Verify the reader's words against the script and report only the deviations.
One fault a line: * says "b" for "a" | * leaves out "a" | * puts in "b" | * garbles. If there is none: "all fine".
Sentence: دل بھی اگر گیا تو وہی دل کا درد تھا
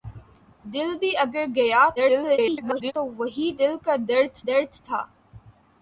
* garbles
* puts in "درد"